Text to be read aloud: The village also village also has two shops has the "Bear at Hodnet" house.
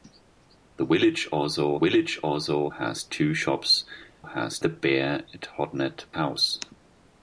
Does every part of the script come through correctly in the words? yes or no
yes